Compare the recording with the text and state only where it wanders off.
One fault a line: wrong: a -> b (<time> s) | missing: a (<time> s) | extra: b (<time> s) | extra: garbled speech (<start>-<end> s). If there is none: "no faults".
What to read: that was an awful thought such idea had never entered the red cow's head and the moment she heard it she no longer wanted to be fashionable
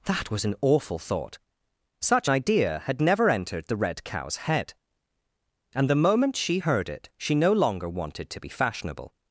no faults